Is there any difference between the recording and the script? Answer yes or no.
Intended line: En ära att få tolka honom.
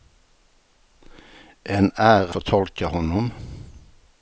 yes